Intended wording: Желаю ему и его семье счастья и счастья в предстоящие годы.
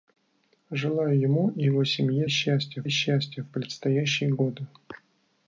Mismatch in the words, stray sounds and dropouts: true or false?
false